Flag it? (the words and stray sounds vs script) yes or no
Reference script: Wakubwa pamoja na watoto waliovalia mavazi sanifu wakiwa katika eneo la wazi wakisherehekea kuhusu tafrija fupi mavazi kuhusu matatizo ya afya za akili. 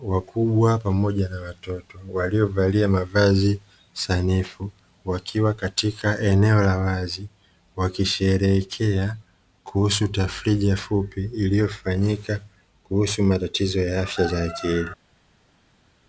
yes